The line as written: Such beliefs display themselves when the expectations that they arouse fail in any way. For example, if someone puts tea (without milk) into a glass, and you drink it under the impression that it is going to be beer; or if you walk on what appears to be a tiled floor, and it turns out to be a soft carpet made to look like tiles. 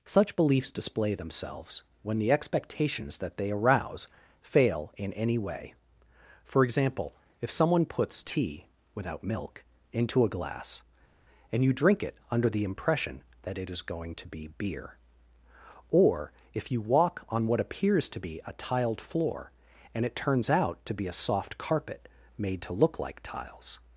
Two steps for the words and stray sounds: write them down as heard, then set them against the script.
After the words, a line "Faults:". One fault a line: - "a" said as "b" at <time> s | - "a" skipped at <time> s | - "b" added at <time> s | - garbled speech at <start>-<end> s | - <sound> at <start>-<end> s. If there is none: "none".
Such beliefs display themselves when the expectations that they arouse fail in any way. For example, if someone puts tea (without milk) into a glass, and you drink it under the impression that it is going to be beer; or if you walk on what appears to be a tiled floor, and it turns out to be a soft carpet made to look like tiles.
Faults:
none